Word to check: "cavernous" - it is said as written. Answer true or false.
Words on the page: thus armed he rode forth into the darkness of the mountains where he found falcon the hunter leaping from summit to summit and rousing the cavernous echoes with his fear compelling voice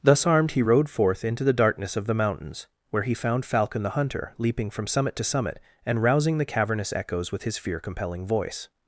true